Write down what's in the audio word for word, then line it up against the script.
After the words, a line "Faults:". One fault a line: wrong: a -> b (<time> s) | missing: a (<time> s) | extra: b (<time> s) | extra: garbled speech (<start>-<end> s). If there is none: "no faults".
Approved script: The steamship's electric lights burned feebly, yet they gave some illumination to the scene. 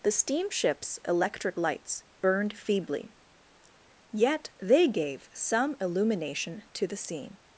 The steamship's electric lights burned feebly, yet they gave some illumination to the scene.
Faults:
no faults